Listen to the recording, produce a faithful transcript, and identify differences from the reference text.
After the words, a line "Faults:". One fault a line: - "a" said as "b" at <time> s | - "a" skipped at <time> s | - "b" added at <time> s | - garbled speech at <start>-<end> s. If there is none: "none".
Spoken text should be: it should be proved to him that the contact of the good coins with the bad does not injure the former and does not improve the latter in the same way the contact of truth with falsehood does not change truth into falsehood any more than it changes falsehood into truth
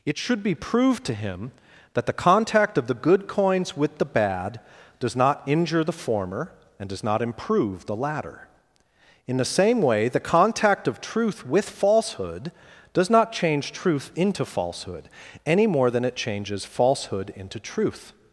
it should be proved to him that the contact of the good coins with the bad does not injure the former and does not improve the latter in the same way the contact of truth with falsehood does not change truth into falsehood any more than it changes falsehood into truth
Faults:
none